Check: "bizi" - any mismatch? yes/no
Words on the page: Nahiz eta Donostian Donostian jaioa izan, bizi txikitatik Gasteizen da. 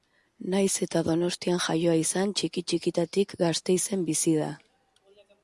yes